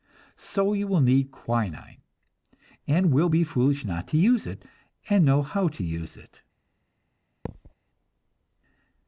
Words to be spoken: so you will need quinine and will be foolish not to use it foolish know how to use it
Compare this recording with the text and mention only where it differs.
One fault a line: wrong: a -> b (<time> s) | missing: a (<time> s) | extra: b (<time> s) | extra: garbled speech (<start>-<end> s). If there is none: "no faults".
wrong: foolish -> and (5.1 s)